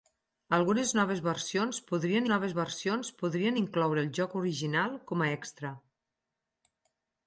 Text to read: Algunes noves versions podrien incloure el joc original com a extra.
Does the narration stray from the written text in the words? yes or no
yes